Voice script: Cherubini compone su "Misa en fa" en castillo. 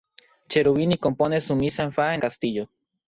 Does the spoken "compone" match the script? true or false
true